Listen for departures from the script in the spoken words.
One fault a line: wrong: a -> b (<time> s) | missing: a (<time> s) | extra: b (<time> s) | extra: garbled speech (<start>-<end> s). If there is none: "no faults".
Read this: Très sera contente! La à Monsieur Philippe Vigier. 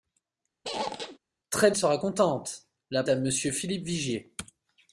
no faults